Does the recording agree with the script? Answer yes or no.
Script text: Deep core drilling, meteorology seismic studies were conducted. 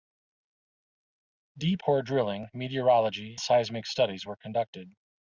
yes